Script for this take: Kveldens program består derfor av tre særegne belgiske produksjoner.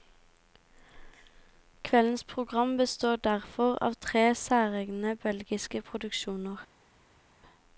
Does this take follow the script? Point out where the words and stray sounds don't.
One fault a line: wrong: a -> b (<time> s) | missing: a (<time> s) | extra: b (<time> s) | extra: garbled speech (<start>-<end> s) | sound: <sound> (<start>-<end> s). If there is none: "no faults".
no faults